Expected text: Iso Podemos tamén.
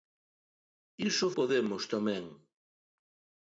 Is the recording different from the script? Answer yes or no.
no